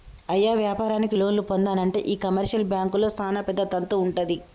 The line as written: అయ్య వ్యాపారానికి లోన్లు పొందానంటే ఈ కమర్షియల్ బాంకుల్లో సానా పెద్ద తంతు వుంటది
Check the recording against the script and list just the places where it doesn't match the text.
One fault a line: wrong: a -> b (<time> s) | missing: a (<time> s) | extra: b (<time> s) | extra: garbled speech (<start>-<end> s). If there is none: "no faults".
no faults